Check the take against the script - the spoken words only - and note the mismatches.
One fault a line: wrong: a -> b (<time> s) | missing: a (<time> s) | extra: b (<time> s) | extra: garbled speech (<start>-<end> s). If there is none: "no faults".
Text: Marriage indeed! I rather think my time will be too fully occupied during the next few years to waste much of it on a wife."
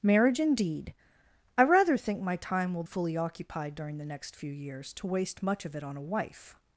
missing: be too (2.8 s)